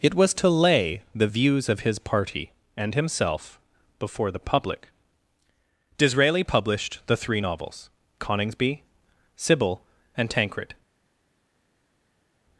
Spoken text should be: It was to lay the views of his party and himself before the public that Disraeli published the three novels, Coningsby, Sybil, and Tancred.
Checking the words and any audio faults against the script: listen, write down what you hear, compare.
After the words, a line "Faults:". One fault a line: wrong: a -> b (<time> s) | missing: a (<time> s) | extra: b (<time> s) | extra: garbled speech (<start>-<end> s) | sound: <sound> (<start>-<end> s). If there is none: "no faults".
It was to lay the views of his party and himself before the public Disraeli published the three novels, Coningsby, Sybil, and Tancred.
Faults:
missing: that (4.9 s)